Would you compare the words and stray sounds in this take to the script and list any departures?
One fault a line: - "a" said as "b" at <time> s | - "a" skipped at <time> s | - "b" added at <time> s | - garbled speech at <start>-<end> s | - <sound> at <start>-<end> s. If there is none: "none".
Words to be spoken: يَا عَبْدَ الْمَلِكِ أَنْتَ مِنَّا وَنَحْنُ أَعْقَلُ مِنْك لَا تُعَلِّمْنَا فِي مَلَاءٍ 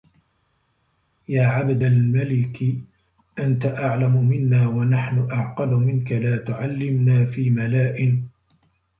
- "أَعْلَمُ" added at 3.6 s